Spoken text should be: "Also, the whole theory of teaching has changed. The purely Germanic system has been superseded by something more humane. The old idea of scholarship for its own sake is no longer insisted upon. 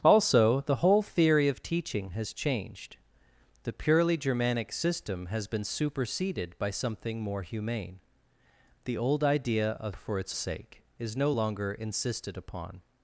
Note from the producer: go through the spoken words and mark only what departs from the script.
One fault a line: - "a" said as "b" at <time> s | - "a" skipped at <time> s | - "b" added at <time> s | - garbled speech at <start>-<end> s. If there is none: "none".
- "scholarship" skipped at 9.9 s
- "own" skipped at 10.4 s